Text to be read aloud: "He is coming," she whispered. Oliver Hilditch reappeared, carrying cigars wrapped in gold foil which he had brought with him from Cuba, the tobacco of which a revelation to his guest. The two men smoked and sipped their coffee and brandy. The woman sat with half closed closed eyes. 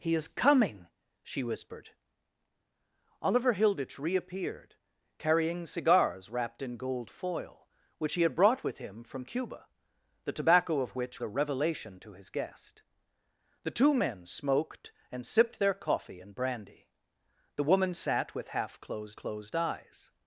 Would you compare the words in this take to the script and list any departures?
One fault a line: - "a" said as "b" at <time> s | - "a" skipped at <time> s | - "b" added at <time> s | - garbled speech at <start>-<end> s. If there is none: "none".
none